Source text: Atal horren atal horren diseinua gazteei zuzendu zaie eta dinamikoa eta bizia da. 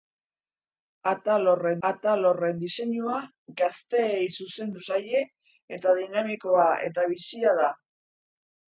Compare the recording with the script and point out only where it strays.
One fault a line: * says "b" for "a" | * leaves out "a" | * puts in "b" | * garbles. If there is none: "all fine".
all fine